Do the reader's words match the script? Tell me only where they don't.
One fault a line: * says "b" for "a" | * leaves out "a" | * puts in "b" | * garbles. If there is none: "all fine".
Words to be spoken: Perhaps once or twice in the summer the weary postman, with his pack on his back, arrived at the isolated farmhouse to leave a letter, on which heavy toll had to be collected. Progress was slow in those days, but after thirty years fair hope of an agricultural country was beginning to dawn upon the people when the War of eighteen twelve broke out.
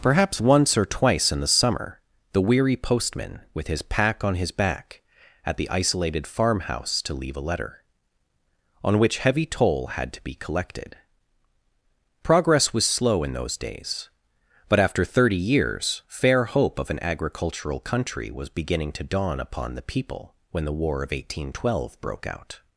* leaves out "arrived"